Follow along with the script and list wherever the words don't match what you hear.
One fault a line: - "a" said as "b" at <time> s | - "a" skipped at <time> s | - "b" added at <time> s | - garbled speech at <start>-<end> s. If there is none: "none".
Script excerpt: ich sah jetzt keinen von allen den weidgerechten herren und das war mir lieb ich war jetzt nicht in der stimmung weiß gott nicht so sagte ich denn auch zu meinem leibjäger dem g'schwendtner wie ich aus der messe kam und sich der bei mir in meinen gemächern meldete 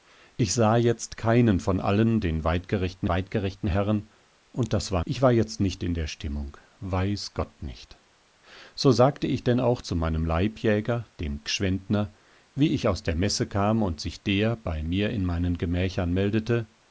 - "weidgerechten" added at 3.1 s
- "mir lieb" skipped at 5.0 s